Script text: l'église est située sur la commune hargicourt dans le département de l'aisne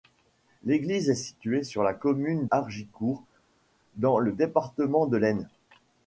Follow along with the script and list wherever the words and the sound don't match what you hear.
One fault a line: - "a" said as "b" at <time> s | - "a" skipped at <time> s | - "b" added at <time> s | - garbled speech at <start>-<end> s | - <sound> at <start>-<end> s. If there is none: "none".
none